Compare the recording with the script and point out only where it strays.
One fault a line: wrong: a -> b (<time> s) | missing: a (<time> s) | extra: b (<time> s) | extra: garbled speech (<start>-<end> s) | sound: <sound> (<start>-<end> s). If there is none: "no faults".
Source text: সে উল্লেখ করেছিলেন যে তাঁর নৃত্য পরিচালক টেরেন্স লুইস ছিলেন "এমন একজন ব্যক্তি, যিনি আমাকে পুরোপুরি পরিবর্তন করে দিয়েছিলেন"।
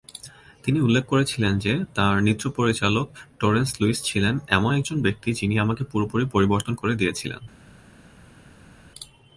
wrong: সে -> তিনি (0.6 s)